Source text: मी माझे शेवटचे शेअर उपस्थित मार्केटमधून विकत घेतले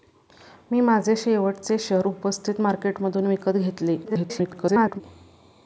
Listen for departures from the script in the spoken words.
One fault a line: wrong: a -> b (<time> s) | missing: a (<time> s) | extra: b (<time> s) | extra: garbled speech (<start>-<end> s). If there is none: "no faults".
extra: garbled speech (4.0-5.0 s)